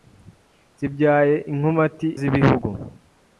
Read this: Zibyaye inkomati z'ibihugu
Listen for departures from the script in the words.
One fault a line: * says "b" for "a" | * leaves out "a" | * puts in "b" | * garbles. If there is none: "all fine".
all fine